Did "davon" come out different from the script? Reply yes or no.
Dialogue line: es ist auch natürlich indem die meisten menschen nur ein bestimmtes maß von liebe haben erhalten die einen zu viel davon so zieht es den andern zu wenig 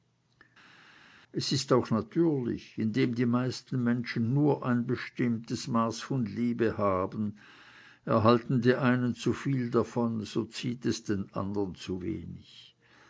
no